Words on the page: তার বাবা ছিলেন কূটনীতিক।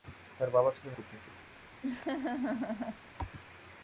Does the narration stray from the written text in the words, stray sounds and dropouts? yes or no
yes